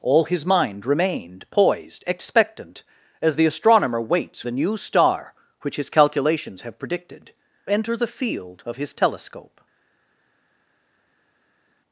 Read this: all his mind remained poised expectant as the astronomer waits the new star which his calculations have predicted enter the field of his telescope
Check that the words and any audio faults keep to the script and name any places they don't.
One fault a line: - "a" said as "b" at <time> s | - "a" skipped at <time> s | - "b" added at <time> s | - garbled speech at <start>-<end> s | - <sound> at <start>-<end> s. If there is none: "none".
none